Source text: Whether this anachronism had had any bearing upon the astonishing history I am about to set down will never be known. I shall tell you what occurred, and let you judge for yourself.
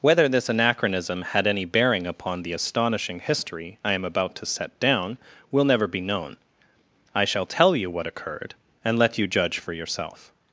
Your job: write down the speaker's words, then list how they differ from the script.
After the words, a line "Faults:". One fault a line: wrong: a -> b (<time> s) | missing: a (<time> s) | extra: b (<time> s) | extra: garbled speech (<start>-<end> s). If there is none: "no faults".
Whether this anachronism had any bearing upon the astonishing history I am about to set down will never be known. I shall tell you what occurred, and let you judge for yourself.
Faults:
missing: had (1.4 s)